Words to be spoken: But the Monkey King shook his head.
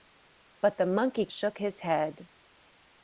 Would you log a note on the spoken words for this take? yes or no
yes